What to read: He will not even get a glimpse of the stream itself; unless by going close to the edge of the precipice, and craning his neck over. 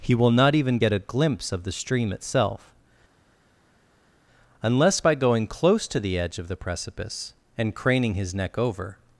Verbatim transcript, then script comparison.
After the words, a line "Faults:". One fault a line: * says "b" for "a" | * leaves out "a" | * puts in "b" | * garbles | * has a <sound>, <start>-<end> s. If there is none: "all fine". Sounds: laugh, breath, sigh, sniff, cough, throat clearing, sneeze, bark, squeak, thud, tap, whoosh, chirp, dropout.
He will not even get a glimpse of the stream itself; unless by going close to the edge of the precipice, and craning his neck over.
Faults:
all fine